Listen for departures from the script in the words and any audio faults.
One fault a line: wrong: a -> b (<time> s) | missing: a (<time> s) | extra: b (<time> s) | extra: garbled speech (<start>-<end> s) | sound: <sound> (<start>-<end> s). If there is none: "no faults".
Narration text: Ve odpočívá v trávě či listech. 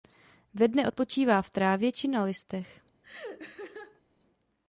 extra: dne (0.7 s)
extra: na (2.1 s)
sound: laugh (3.0-4.0 s)